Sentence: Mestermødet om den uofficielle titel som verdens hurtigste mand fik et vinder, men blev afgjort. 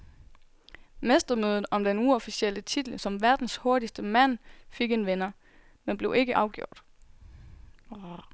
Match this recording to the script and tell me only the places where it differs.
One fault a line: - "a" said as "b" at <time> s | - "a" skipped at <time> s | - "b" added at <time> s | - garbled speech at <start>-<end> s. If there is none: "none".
- "et" said as "en" at 4.9 s
- "ikke" added at 6.1 s